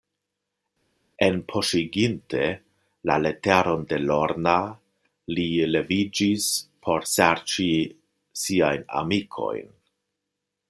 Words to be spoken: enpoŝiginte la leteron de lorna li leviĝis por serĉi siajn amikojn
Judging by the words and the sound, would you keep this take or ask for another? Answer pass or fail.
pass